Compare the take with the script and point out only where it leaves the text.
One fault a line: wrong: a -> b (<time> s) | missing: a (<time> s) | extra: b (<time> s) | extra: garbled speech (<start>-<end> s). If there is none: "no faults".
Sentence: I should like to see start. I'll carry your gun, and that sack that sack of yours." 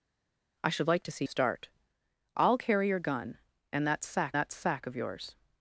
no faults